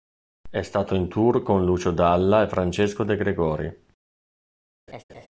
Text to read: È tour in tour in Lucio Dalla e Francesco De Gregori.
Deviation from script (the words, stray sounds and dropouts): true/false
true